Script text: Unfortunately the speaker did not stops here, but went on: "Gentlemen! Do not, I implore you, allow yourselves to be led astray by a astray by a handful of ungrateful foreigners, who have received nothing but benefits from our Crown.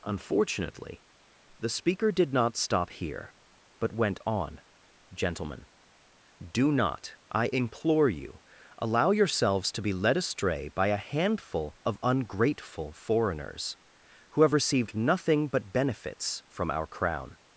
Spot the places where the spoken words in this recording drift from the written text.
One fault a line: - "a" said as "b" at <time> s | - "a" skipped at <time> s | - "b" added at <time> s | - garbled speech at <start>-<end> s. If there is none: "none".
- "stops" said as "stop" at 2.6 s
- "astray by a" skipped at 11.1 s